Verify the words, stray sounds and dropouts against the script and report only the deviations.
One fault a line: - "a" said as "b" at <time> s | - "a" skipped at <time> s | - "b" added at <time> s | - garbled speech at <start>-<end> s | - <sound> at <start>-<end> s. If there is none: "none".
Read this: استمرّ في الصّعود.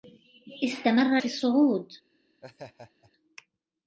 - laugh at 2.4-3.1 s